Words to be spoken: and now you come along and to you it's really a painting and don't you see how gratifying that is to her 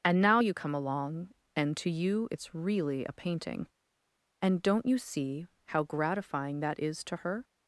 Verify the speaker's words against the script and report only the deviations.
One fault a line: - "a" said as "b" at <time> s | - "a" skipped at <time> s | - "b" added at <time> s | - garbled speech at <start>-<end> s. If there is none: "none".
none